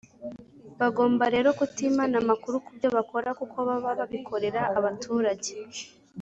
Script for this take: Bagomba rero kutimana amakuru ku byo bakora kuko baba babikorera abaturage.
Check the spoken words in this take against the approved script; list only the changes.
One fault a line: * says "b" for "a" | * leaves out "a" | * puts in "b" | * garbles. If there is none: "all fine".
all fine